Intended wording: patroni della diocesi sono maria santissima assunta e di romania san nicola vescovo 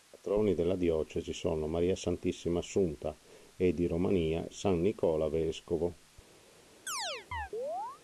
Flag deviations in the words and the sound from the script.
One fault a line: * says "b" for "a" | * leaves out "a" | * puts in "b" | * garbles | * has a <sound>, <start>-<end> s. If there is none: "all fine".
* has a chirp, 6.9-8.0 s